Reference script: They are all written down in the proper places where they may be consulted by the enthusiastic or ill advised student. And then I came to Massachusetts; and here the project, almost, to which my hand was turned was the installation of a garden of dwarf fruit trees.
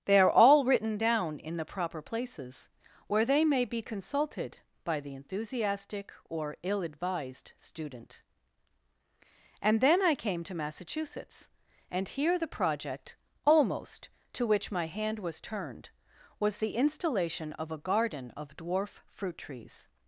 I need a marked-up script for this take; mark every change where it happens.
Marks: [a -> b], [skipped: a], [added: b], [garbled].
They are all written down in the proper places where they may be consulted by the enthusiastic or ill advised student. And then I came to Massachusetts; and here the project, almost, to which my hand was turned was the installation of a garden of dwarf fruit trees.